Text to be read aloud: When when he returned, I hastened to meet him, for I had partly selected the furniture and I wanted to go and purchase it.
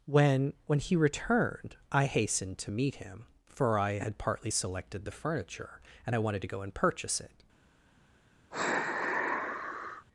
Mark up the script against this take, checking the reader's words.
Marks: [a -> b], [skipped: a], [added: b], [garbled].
When when he returned, I hastened to meet him, for I had partly selected the furniture and I wanted to go and purchase it.